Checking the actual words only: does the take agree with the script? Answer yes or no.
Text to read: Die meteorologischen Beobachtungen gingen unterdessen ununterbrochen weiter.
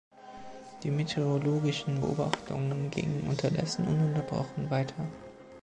yes